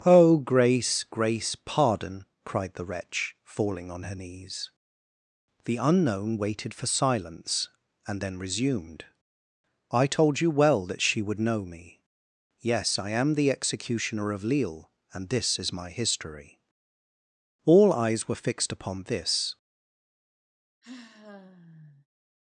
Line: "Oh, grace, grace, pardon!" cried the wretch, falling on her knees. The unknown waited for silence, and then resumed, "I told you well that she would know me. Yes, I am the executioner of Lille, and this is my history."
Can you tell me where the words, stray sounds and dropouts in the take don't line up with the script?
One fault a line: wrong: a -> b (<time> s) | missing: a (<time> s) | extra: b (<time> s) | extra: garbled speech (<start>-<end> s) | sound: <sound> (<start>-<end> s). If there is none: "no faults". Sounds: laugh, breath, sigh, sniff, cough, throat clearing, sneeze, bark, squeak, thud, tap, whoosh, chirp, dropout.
extra: All eyes were fixed upon this (17.6 s)
sound: sigh (20.8-22.1 s)